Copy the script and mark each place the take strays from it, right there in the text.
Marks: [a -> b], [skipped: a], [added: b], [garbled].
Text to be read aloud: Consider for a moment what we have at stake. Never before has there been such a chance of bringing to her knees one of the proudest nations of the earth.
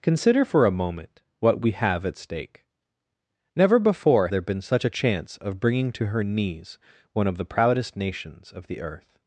Consider for a moment what we have at stake. Never before [skipped: has] there been such a chance of bringing to her knees one of the proudest nations of the earth.